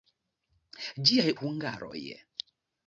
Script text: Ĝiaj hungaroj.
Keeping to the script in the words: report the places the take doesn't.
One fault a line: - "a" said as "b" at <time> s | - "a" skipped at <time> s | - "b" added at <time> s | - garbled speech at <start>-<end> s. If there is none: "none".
none